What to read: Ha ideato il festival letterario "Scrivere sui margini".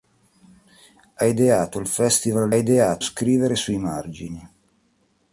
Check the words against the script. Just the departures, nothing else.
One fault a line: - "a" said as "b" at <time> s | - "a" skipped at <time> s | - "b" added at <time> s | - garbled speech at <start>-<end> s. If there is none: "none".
- "letterario" said as "ideato" at 2.5 s